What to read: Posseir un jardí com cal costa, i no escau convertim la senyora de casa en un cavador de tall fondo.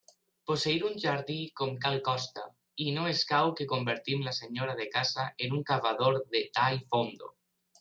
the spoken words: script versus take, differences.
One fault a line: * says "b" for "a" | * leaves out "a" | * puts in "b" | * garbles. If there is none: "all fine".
* puts in "que"